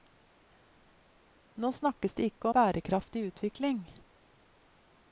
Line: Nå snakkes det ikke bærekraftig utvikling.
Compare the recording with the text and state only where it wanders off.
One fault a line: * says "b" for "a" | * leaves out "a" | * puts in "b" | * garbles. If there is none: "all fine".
all fine